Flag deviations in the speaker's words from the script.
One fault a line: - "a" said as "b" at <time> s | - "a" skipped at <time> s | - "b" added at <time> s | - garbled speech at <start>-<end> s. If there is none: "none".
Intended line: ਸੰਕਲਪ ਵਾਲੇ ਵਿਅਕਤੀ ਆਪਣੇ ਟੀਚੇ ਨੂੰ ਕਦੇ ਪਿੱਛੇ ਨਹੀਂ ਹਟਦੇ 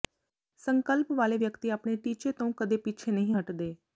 - "ਨੂੰ" said as "ਤੋਂ" at 2.3 s